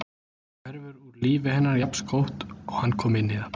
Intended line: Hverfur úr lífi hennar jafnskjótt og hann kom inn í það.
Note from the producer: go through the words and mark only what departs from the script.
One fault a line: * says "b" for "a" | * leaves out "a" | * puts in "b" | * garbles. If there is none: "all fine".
all fine